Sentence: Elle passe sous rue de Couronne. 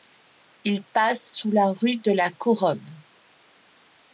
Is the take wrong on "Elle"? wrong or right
wrong